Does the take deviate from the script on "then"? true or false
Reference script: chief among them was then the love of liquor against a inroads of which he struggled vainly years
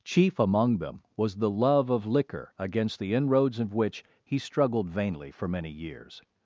true